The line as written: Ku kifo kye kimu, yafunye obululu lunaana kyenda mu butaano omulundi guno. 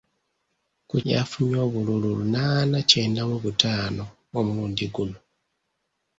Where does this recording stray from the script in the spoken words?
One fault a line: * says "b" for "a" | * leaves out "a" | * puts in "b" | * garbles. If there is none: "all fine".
* leaves out "kifo kye kimu"